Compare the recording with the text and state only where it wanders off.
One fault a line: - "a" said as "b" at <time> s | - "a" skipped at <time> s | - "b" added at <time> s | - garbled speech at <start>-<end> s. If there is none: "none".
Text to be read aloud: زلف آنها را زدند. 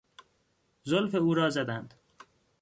- "آنها" said as "او" at 1.1 s